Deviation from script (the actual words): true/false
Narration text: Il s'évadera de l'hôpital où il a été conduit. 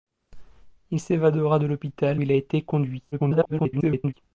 true